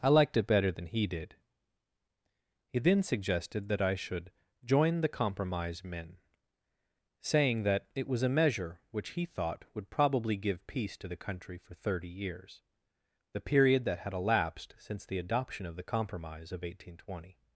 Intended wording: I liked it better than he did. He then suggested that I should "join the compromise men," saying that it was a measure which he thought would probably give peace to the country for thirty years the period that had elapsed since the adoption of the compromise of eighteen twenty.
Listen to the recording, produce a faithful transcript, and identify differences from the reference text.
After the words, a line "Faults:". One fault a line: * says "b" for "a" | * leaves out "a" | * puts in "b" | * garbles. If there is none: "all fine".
I liked it better than he did. He then suggested that I should "join the compromise men," saying that it was a measure which he thought would probably give peace to the country for thirty years the period that had elapsed since the adoption of the compromise of eighteen twenty.
Faults:
all fine